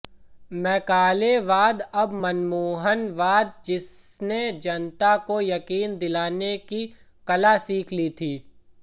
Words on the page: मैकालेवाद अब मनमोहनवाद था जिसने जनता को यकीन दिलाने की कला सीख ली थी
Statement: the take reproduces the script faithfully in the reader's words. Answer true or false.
false